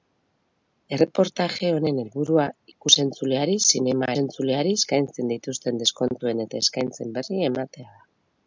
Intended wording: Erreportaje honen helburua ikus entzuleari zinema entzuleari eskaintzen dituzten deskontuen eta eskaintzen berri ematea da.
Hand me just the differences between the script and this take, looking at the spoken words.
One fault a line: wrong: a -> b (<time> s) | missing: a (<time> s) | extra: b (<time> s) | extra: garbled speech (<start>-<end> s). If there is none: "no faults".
no faults